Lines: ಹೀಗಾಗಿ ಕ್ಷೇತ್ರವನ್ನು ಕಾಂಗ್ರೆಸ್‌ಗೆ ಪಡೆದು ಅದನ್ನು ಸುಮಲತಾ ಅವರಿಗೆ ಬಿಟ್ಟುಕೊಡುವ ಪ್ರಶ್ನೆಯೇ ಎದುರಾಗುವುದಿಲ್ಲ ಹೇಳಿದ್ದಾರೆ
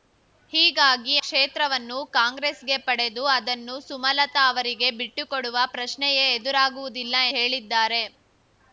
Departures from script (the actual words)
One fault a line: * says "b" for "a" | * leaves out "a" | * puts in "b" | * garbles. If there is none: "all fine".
all fine